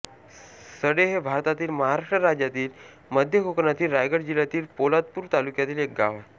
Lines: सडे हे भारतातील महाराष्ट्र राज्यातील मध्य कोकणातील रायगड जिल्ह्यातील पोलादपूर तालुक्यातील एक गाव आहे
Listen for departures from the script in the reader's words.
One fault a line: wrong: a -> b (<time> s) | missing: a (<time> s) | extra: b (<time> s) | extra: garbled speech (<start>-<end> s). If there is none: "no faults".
no faults